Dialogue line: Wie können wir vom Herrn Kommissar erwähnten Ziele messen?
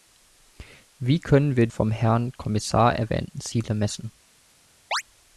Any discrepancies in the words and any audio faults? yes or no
yes